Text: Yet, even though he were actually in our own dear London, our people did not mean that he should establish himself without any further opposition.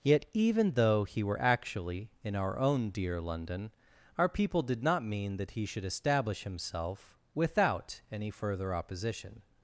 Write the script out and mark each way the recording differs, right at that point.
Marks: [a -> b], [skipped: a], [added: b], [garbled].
Yet, even though he were actually in our own dear London, our people did not mean that he should establish himself without any further opposition.